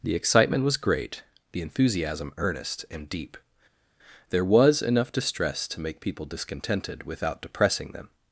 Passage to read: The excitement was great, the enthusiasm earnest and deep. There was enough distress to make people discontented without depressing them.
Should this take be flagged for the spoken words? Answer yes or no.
no